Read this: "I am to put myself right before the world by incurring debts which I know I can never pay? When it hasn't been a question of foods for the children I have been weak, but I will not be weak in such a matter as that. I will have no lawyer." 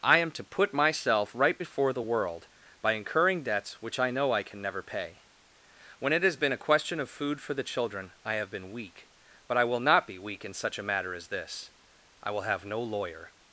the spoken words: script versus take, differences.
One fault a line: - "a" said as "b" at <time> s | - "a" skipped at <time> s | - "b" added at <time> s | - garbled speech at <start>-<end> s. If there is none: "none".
- "hasn't" said as "has" at 6.2 s
- "foods" said as "food" at 7.1 s
- "that" said as "this" at 11.3 s